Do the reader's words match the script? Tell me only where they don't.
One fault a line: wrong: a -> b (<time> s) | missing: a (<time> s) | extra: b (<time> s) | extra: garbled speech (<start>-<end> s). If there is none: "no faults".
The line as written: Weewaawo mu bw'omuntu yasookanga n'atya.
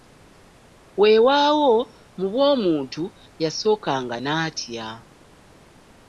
no faults